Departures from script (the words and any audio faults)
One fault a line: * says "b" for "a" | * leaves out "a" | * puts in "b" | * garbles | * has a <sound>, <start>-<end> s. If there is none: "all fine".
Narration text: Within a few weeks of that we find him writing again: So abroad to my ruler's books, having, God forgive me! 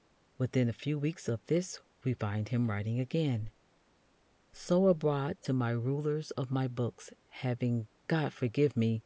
* says "this" for "that"
* puts in "of my"